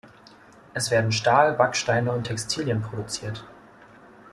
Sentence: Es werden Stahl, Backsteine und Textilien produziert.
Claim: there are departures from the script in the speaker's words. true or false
false